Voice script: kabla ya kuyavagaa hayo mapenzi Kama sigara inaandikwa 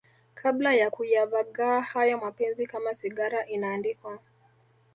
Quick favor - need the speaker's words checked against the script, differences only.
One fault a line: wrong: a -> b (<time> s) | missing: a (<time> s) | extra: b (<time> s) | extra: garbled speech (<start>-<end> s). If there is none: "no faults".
no faults